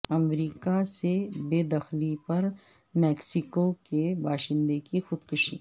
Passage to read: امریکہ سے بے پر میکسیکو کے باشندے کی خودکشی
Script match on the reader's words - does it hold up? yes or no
no